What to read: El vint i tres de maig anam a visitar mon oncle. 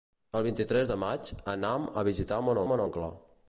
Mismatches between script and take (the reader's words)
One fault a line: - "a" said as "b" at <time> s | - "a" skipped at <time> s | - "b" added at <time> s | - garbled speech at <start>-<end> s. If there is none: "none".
- "mon" added at 2.7 s